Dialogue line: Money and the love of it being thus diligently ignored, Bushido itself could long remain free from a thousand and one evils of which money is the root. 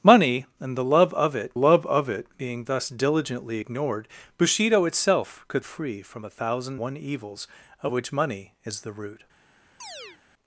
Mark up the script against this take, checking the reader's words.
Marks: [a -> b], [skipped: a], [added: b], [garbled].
Money and the love of it [added: love of it] being thus diligently ignored, Bushido itself could [skipped: long remain] free from a thousand [skipped: and] one evils of which money is the root.